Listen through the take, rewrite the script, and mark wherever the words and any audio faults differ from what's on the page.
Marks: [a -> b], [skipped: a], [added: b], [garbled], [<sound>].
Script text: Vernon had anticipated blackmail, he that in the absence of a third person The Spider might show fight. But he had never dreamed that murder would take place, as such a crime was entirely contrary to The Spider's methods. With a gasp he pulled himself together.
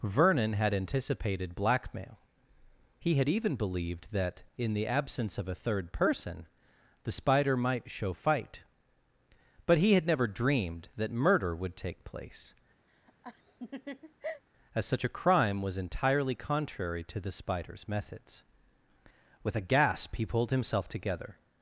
Vernon had anticipated blackmail, he [added: had even believed] that in the absence of a third person The Spider might show fight. But he had never dreamed that murder would take place, [laugh] as such a crime was entirely contrary to The Spider's methods. With a gasp he pulled himself together.